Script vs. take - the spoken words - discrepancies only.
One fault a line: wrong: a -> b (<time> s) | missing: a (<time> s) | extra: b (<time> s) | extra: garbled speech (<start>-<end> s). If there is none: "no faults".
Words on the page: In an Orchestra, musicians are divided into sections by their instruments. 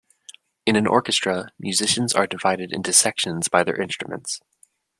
no faults